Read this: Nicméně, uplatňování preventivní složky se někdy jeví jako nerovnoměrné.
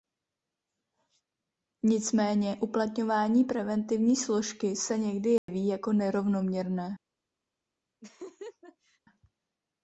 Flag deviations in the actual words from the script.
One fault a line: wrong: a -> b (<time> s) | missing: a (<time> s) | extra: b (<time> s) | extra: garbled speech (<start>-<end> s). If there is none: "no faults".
no faults